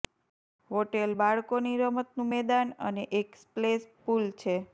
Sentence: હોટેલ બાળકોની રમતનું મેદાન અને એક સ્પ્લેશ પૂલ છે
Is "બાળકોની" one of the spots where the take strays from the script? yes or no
no